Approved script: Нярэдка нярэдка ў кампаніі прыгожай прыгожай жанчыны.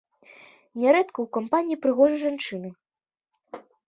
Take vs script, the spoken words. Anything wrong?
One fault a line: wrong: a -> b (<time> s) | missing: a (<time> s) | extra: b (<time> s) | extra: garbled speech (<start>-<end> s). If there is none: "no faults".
missing: нярэдка (1.2 s)
missing: прыгожай (2.2 s)